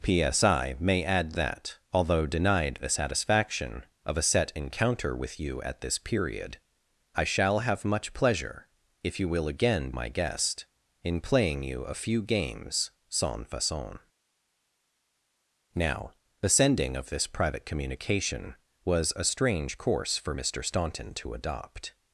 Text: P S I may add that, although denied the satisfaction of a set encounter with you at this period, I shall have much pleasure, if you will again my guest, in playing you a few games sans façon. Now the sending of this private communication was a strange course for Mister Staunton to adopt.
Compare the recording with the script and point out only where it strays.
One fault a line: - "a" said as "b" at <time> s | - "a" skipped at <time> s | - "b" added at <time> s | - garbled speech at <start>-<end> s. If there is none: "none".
none